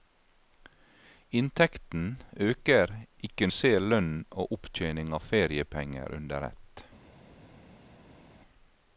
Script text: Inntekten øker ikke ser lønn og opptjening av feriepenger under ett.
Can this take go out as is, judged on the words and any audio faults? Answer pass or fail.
pass